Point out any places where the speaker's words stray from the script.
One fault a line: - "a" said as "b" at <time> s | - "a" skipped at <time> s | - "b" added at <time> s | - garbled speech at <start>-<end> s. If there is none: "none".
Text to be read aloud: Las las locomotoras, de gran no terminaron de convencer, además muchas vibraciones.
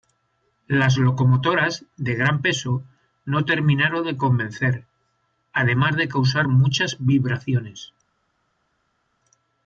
- "las" skipped at 1.0 s
- "peso" added at 2.4 s
- "de causar" added at 6.0 s